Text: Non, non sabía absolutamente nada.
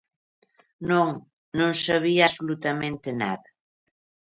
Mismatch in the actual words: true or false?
false